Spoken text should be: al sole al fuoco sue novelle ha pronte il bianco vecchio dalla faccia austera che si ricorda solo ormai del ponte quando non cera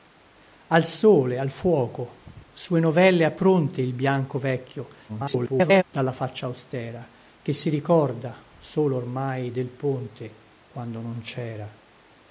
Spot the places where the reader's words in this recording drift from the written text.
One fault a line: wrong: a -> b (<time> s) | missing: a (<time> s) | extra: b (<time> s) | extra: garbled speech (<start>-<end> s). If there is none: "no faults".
extra: garbled speech (5.1-5.8 s)